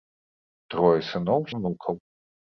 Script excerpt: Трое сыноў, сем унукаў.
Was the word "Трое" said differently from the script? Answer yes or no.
no